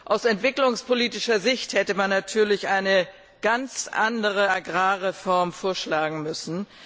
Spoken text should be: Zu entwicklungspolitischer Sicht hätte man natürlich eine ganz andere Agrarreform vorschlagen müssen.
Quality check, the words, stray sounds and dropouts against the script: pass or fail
fail